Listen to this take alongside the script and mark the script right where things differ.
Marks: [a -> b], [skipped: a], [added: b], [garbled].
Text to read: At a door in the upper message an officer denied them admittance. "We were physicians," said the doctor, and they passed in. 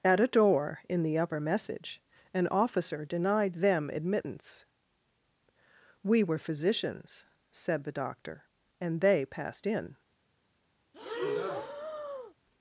At a door in the upper message an officer denied them admittance. "We were physicians," said the doctor, and they passed in.